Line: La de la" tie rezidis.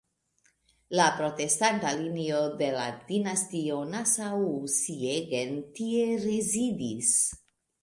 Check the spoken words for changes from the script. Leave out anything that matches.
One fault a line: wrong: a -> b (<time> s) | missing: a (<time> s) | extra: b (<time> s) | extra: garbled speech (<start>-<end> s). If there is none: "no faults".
extra: protestanta linio (1.2 s)
extra: dinastio Nassau Siegen (3.1 s)